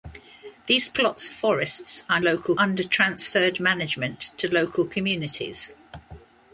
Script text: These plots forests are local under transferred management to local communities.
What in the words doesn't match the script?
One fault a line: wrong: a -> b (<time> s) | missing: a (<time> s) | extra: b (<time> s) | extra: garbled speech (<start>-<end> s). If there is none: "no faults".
no faults